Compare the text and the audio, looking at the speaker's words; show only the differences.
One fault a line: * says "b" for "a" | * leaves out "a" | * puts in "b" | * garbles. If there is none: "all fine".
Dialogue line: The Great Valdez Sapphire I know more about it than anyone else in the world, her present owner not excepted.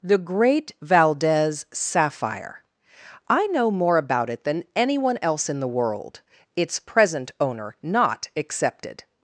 * says "its" for "her"